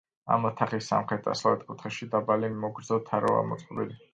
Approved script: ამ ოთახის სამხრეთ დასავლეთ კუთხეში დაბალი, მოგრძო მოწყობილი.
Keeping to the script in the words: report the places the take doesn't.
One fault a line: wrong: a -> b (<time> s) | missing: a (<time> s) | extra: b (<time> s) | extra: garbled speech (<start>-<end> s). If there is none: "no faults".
extra: თაროა (3.1 s)